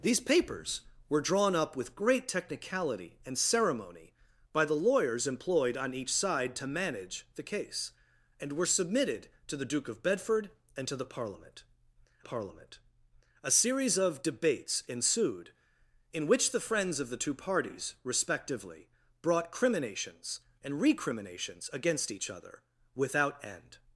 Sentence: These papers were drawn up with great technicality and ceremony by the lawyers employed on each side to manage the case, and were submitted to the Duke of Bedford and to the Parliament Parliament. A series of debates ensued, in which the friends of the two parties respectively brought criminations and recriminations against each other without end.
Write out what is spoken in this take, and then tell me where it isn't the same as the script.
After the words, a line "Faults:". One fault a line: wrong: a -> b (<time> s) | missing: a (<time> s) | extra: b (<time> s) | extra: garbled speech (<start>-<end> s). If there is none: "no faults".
These papers were drawn up with great technicality and ceremony by the lawyers employed on each side to manage the case, and were submitted to the Duke of Bedford and to the Parliament Parliament. A series of debates ensued, in which the friends of the two parties respectively brought criminations and recriminations against each other without end.
Faults:
no faults